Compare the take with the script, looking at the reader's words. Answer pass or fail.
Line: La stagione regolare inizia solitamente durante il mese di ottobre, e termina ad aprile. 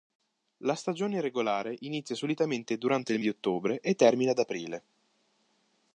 fail